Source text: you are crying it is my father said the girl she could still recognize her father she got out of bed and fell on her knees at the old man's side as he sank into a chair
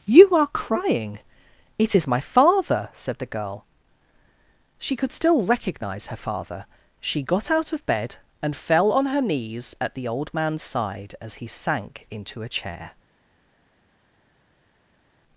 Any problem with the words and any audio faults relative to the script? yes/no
no